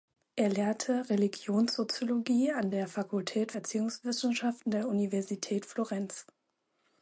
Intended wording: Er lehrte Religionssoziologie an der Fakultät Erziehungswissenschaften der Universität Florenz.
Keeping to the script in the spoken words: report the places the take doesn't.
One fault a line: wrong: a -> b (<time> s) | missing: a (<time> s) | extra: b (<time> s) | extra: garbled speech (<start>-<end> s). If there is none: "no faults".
no faults